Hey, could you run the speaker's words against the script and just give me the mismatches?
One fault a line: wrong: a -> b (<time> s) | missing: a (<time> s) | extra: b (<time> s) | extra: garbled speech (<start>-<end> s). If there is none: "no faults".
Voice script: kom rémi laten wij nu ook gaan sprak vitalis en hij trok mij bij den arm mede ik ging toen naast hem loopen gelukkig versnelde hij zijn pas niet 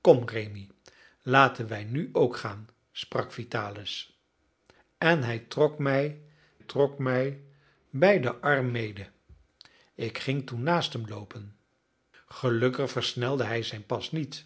extra: trok mij (6.6 s)